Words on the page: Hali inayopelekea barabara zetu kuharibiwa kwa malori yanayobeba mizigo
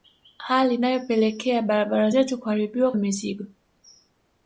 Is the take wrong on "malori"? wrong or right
wrong